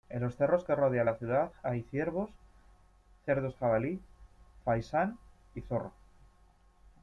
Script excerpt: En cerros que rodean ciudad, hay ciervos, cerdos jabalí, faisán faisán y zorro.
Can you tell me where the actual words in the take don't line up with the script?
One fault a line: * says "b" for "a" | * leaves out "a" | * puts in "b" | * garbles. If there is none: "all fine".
* puts in "los"
* puts in "la"
* leaves out "faisán"